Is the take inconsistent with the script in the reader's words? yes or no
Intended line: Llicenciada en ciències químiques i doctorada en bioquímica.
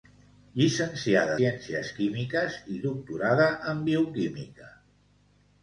yes